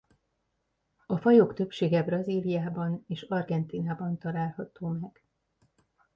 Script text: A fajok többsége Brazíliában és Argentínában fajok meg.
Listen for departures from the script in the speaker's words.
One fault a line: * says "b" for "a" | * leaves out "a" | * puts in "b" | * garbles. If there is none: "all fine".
* says "található" for "fajok"